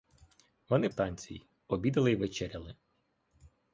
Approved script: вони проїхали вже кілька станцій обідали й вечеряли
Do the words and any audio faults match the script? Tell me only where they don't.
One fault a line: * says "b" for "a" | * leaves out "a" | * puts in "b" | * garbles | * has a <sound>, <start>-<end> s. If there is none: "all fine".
* leaves out "проїхали вже кілька"